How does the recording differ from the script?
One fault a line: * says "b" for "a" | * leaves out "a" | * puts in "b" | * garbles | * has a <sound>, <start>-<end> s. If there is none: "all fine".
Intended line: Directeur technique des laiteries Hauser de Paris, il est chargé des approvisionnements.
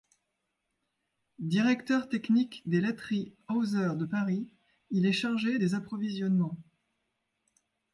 all fine